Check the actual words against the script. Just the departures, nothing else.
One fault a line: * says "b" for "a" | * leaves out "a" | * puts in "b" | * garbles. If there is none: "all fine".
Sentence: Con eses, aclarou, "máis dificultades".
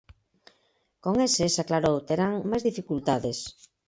* puts in "terán"